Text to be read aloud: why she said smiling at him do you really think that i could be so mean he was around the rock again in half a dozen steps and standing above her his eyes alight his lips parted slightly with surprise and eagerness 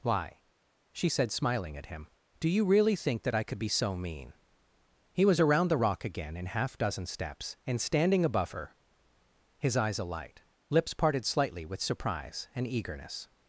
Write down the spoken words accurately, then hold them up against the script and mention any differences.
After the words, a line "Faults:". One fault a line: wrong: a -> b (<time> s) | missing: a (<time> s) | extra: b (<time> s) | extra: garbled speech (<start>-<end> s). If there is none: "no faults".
why she said smiling at him do you really think that i could be so mean he was around the rock again in half dozen steps and standing above her his eyes alight lips parted slightly with surprise and eagerness
Faults:
missing: a (6.8 s)
missing: his (10.4 s)